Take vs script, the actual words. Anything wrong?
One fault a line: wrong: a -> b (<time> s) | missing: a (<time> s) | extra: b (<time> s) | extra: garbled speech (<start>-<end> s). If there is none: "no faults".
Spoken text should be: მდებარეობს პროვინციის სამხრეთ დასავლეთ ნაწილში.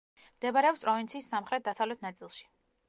no faults